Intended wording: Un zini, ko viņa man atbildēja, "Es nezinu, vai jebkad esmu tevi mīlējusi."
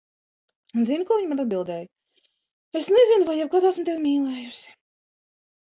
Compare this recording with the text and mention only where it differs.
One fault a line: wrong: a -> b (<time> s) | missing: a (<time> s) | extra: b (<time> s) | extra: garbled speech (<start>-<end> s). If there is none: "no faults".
no faults